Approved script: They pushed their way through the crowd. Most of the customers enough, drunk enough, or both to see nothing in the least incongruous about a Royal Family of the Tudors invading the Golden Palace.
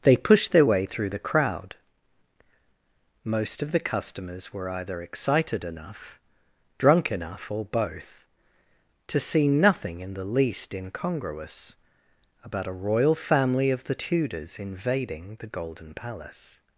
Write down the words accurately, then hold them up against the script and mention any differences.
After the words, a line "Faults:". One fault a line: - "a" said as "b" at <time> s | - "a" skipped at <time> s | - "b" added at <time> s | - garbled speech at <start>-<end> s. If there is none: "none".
They pushed their way through the crowd. Most of the customers were either excited enough, drunk enough, or both to see nothing in the least incongruous about a Royal Family of the Tudors invading the Golden Palace.
Faults:
- "were either excited" added at 4.5 s